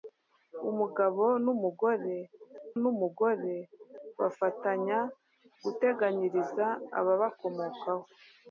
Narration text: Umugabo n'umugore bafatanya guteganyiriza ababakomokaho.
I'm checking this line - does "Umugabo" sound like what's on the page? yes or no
yes